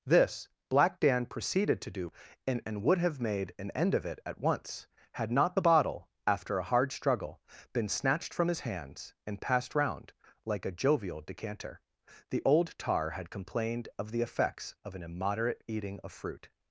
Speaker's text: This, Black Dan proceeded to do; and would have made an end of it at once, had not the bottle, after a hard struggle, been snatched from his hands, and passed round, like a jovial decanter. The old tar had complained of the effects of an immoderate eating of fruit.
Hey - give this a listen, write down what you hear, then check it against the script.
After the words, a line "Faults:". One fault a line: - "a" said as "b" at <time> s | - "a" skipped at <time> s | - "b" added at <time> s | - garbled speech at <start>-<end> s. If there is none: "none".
This, Black Dan proceeded to do; and and would have made an end of it at once, had not the bottle, after a hard struggle, been snatched from his hands, and passed round, like a jovial decanter. The old tar had complained of the effects of an immoderate eating of fruit.
Faults:
- "and" added at 2.6 s